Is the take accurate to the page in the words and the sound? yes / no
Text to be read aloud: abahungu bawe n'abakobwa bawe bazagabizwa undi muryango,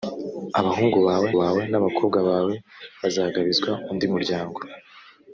no